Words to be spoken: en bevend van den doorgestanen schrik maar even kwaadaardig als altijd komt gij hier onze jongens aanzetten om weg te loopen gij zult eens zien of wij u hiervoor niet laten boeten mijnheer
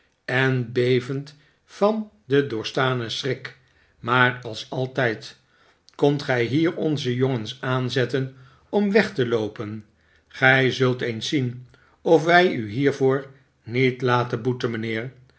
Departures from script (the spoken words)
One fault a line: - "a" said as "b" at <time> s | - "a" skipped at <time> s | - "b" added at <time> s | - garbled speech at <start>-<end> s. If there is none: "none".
- "even kwaadaardig" skipped at 4.4 s